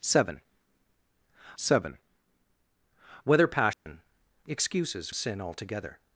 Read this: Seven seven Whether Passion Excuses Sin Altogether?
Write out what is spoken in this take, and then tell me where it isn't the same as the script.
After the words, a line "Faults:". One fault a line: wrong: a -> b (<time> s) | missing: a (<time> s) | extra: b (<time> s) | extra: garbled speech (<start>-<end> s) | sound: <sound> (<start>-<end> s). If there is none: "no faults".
Seven seven Whether Passion Excuses Sin Altogether?
Faults:
sound: dropout (3.7-3.9 s)